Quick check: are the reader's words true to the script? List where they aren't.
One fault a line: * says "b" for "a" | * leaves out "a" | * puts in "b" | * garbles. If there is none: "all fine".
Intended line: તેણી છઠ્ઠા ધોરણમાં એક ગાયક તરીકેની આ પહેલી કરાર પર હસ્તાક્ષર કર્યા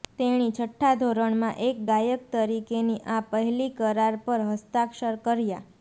all fine